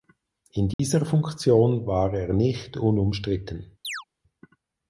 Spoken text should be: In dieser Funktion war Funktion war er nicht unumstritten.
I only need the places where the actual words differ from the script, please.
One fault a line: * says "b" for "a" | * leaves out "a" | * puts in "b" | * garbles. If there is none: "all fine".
* leaves out "Funktion war"